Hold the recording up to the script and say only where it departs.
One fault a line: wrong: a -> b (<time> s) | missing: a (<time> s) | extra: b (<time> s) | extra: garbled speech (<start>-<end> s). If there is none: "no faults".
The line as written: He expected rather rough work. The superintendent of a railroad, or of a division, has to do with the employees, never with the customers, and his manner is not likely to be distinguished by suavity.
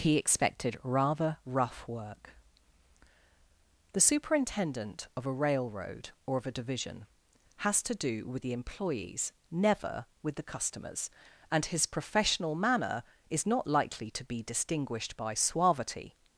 extra: professional (11.8 s)